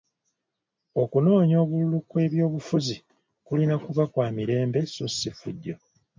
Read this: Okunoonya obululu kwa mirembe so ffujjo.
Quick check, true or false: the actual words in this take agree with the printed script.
false